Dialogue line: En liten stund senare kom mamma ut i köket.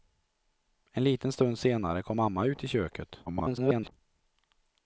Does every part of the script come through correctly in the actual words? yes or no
no